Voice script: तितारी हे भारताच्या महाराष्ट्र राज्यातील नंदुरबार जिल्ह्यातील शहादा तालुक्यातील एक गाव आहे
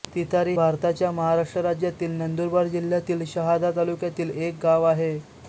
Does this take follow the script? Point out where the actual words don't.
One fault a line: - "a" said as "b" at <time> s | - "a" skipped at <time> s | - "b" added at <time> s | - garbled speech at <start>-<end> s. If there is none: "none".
- "हे" skipped at 0.5 s